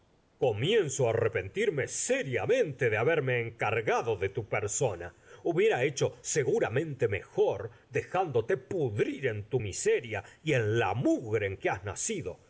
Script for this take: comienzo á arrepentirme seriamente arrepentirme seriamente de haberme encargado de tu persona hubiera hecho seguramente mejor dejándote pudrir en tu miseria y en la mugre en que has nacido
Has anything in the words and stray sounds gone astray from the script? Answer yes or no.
yes